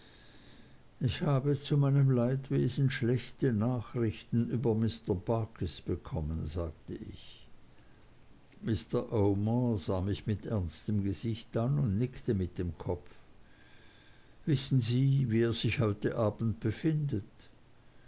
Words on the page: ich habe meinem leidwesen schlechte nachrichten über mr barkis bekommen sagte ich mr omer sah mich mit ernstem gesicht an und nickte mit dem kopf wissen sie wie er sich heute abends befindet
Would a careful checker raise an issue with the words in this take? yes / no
yes